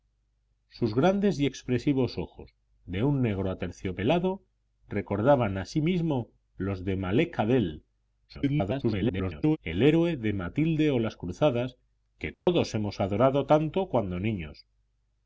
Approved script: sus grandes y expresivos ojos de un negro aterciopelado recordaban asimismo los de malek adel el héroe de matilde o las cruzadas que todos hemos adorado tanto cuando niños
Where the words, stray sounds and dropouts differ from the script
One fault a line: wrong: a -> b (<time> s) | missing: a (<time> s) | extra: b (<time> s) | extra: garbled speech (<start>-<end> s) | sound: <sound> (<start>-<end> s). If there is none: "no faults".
extra: garbled speech (8.3-9.6 s)
sound: dropout (12.3-12.5 s)